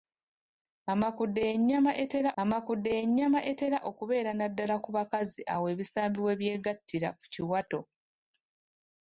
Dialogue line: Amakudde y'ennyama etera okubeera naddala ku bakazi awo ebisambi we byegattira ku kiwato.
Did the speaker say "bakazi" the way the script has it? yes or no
yes